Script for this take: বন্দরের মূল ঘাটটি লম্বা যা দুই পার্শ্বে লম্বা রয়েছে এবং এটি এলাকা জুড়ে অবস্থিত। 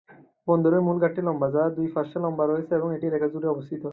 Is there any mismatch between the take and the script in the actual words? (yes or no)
no